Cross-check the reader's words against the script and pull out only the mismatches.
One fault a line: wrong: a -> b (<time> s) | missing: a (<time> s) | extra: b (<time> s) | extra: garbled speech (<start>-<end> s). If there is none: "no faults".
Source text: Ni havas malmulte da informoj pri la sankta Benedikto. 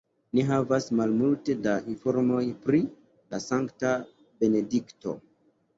no faults